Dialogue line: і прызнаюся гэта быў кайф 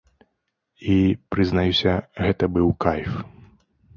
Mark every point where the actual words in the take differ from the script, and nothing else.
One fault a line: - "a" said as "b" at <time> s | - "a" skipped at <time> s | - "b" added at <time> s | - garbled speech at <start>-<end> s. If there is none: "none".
none